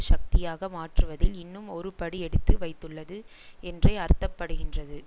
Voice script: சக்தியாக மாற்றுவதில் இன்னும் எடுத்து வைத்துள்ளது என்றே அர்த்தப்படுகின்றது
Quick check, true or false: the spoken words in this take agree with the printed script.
false